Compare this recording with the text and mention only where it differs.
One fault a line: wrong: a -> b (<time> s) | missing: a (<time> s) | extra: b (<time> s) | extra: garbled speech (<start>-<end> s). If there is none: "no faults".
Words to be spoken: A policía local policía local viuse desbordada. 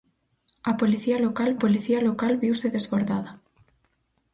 no faults